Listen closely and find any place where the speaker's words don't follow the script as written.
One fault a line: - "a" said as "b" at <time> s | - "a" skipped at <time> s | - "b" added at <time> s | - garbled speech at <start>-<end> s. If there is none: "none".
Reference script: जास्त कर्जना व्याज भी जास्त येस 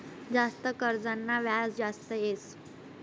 - "भी" skipped at 1.8 s